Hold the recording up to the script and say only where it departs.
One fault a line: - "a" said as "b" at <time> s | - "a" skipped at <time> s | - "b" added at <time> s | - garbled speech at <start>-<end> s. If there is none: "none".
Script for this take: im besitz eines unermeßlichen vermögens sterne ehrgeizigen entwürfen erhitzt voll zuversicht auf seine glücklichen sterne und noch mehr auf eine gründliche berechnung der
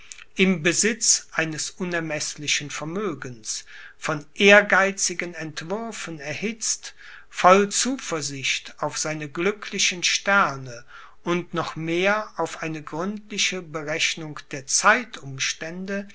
- "sterne" said as "von" at 4.0 s